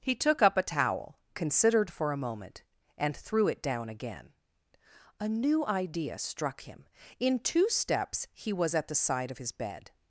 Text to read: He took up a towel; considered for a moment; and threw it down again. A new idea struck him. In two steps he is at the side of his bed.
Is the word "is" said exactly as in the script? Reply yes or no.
no